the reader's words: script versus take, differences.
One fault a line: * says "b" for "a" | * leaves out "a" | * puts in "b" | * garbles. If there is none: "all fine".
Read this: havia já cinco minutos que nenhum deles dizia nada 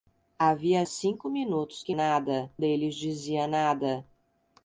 * leaves out "já"
* says "nada" for "nenhum"